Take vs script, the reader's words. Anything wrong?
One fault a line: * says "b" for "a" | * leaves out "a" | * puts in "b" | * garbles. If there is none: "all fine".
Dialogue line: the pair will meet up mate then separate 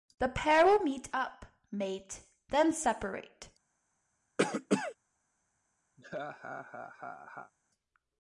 all fine